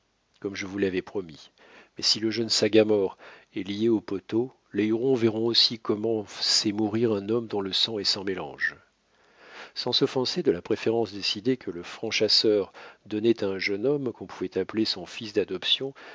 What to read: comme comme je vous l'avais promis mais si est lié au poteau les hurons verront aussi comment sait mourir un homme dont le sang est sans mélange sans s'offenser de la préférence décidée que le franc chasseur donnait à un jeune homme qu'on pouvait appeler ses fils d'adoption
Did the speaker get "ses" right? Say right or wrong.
wrong